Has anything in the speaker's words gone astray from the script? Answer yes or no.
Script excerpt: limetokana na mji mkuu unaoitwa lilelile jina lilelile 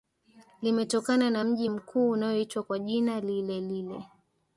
yes